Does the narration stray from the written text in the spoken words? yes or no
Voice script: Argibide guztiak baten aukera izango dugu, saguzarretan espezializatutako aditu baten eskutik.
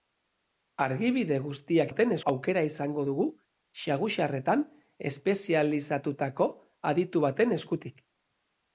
no